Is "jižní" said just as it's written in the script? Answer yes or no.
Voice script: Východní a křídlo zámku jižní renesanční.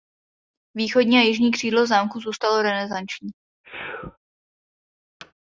no